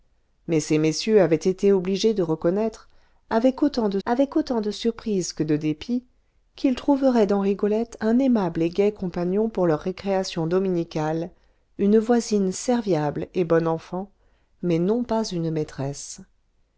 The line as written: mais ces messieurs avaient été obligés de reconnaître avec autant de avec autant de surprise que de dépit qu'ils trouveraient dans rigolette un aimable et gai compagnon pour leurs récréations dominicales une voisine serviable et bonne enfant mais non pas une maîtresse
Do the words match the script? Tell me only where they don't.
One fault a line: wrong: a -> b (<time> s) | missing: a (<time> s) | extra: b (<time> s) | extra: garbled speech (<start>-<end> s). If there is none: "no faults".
no faults